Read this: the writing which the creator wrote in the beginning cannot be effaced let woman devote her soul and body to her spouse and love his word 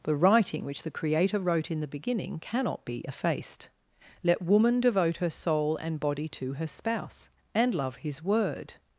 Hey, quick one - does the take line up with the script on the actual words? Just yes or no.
yes